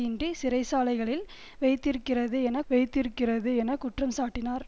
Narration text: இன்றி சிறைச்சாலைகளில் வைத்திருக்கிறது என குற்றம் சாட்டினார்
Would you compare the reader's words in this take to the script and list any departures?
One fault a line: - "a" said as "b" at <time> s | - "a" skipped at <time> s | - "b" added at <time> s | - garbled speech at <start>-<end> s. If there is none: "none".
- "வைத்திருக்கிறது என" added at 2.7 s